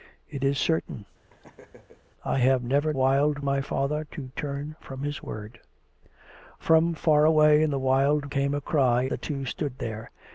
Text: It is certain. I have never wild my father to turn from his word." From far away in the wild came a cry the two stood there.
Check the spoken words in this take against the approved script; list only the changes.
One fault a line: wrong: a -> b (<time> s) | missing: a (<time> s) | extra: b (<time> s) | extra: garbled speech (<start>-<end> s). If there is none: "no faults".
no faults